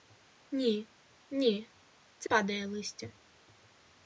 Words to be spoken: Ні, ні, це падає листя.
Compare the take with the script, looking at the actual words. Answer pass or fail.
pass